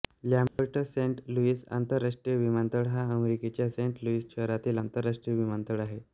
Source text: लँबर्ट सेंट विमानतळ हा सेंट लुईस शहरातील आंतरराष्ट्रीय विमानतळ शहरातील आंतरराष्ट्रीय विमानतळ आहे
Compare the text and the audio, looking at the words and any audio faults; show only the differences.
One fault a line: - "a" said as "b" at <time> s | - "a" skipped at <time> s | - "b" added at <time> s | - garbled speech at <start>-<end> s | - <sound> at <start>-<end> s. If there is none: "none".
- dropout at 0.5-0.6 s
- "लुईस आंतरराष्ट्रीय" added at 1.3 s
- "अमेरिकेच्या" added at 3.1 s
- "शहरातील आंतरराष्ट्रीय विमानतळ" skipped at 5.8 s